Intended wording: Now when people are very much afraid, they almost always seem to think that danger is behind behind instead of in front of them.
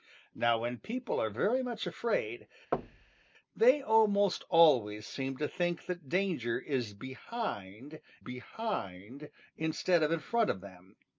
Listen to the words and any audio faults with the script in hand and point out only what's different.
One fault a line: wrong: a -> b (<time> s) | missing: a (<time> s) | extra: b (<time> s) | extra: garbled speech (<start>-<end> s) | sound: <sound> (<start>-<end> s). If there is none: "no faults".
sound: thud (2.7-3.3 s)